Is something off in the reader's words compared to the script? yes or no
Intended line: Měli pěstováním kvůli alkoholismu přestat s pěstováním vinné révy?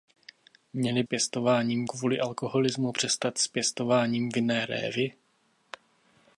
no